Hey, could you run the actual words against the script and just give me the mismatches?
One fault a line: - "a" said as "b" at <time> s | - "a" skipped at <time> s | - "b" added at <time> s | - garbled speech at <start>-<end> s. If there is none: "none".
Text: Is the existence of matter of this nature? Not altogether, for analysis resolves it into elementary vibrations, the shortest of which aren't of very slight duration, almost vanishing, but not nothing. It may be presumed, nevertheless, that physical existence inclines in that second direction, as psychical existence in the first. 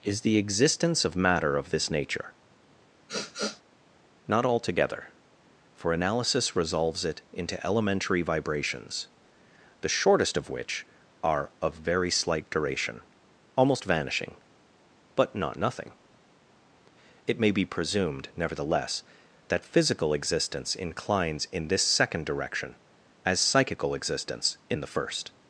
- "aren't" said as "are" at 11.2 s
- "that" said as "this" at 21.7 s